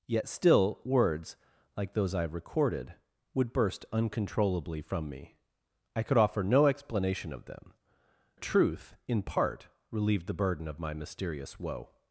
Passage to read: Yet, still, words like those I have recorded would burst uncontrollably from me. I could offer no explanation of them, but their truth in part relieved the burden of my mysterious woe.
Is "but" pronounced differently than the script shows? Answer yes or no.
yes